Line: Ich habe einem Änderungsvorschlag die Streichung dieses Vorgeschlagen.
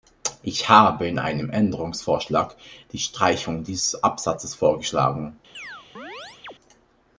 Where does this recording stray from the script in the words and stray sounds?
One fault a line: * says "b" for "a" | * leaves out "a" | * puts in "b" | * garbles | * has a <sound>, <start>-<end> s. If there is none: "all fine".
* puts in "in"
* puts in "Absatzes"
* has a chirp, 5.5-6.5 s